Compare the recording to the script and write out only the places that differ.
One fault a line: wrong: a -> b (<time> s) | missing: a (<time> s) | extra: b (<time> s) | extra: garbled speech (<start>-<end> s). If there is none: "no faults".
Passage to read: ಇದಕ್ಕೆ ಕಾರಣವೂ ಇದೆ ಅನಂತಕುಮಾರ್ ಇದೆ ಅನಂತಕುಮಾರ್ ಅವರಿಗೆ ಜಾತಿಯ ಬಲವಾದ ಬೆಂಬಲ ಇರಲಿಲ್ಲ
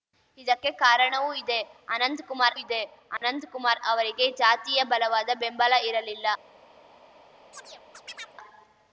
no faults